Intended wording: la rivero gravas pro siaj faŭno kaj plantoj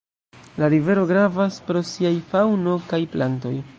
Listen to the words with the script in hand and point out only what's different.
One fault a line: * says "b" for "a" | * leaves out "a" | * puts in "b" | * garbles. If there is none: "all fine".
all fine